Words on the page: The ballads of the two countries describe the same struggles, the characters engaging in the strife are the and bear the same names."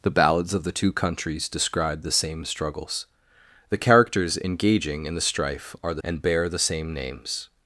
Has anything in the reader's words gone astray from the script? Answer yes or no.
no